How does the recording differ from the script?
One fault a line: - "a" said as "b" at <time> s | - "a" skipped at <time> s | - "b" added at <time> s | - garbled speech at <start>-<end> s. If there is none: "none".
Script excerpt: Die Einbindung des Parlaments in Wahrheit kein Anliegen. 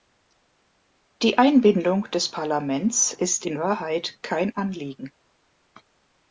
- "ist" added at 3.1 s